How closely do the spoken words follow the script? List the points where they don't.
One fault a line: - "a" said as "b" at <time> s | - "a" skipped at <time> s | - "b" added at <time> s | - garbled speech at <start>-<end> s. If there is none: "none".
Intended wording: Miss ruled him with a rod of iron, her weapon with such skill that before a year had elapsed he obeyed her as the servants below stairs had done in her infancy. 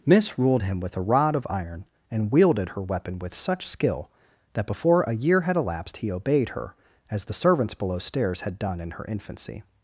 - "and wielded" added at 2.1 s